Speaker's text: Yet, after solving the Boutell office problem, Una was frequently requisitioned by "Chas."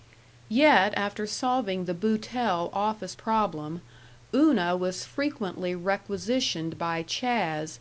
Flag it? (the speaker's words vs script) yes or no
no